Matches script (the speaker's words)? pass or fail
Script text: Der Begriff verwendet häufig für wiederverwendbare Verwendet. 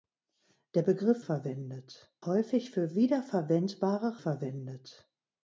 pass